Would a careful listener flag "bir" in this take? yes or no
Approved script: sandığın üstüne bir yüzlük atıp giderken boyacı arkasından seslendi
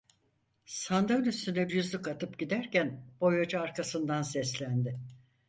yes